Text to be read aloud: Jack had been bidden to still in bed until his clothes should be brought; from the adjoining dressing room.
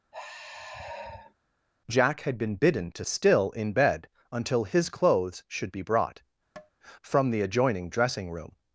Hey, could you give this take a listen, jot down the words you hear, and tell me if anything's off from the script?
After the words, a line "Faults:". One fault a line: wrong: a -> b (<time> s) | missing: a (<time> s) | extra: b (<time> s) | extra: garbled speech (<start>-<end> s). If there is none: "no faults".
Jack had been bidden to still in bed until his clothes should be brought; from the adjoining dressing room.
Faults:
no faults